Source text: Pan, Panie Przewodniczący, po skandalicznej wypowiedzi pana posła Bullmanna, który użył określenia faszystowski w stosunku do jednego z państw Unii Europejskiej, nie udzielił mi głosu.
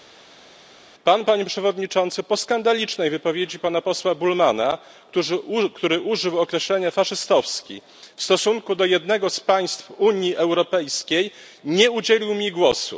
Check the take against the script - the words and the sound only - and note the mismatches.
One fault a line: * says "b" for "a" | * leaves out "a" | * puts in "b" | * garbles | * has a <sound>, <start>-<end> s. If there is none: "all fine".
all fine